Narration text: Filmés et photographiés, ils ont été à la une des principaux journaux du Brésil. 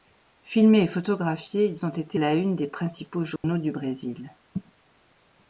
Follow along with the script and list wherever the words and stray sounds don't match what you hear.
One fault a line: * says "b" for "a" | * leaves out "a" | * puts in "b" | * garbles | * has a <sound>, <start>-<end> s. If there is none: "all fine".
* leaves out "à"
* has a dropout, 3.4-3.4 s